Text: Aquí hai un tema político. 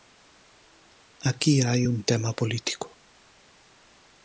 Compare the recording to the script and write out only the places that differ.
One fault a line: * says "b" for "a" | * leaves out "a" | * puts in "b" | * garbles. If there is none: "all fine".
all fine